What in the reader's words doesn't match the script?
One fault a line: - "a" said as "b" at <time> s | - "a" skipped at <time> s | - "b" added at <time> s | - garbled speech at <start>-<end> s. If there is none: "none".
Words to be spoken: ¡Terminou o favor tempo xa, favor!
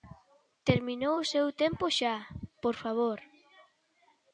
- "favor" said as "seu" at 1.3 s
- "por" added at 2.6 s